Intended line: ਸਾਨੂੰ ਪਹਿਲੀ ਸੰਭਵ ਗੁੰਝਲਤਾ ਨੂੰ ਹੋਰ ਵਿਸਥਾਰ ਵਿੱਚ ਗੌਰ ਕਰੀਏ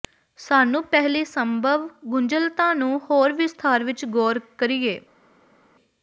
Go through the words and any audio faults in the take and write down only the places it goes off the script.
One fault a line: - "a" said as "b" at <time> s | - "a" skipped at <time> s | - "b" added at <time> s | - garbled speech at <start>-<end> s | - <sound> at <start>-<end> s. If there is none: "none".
none